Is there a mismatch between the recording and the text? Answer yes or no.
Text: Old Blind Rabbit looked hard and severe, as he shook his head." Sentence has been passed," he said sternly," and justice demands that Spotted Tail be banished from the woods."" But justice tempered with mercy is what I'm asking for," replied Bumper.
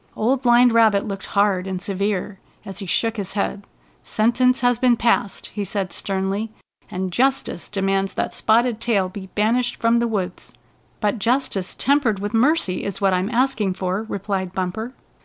no